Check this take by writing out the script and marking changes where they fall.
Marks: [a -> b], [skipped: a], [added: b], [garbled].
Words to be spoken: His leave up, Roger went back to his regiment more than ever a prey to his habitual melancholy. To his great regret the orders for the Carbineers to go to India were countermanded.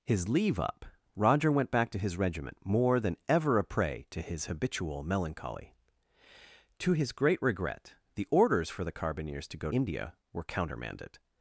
His leave up, Roger went back to his regiment more than ever a prey to his habitual melancholy. To his great regret the orders for the Carbineers to go [skipped: to] India were countermanded.